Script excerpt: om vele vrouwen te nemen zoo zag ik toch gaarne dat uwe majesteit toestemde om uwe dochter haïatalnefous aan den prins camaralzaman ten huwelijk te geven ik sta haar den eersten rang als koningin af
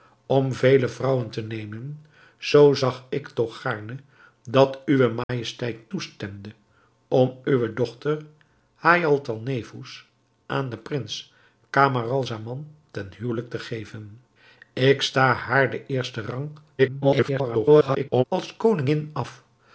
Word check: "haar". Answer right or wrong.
right